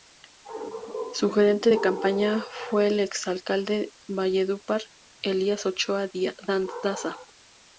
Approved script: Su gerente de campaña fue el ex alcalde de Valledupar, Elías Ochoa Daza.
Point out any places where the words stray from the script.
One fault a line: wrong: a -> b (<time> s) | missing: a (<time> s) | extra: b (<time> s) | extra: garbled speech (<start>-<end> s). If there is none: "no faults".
no faults